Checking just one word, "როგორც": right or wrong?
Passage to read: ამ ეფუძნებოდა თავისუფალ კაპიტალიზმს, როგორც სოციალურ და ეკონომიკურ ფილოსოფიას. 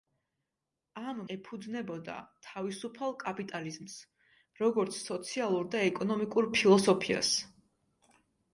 right